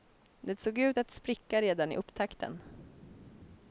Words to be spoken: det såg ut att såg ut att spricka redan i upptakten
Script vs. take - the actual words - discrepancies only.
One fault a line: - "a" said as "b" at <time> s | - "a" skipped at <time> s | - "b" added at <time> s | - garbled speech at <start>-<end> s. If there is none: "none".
- "såg ut att" skipped at 1.1 s